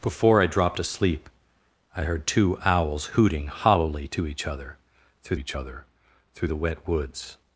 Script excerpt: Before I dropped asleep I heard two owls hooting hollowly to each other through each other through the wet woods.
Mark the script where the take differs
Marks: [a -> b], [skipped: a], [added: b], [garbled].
Before I dropped asleep I heard two owls hooting hollowly to each other through each other through the wet woods.